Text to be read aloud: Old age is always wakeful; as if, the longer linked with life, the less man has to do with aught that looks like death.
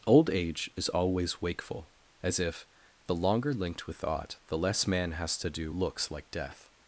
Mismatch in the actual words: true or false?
true